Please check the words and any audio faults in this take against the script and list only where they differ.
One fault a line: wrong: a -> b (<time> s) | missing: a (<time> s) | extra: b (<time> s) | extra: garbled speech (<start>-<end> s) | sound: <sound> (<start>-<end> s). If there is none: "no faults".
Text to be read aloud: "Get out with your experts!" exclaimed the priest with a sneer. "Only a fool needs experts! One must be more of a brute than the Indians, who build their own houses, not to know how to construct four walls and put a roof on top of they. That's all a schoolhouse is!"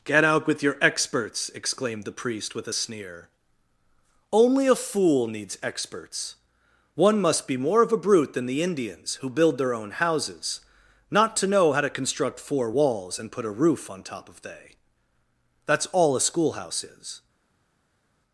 no faults